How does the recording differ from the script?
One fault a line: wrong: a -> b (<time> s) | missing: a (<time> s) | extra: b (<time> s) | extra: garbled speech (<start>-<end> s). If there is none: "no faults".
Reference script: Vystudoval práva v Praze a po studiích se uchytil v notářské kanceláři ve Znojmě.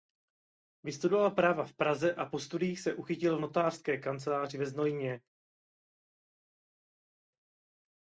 no faults